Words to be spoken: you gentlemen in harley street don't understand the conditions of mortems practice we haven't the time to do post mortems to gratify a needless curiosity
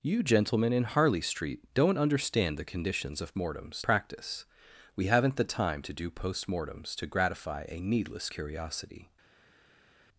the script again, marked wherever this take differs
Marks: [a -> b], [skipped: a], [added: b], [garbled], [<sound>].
you gentlemen in harley street don't understand the conditions of mortems practice we haven't the time to do post mortems to gratify a needless curiosity